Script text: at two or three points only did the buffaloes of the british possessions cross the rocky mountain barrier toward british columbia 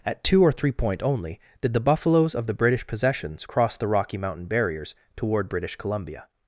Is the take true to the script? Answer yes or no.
no